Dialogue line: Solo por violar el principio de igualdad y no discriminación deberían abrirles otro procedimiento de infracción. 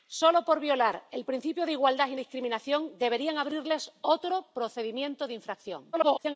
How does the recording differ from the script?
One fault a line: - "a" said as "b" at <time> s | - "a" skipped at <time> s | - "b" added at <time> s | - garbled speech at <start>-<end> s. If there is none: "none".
- "no" skipped at 2.1 s
- garbled speech at 5.9-6.3 s